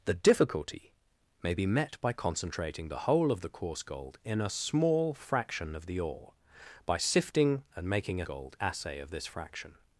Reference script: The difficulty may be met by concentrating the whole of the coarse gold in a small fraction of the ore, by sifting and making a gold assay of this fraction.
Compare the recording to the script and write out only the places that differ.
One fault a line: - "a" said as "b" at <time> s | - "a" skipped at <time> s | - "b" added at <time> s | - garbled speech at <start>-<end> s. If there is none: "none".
none